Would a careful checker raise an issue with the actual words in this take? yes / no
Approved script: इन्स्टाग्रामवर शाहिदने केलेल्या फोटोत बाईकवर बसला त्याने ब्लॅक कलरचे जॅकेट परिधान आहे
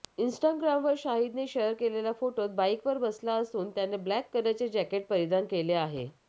yes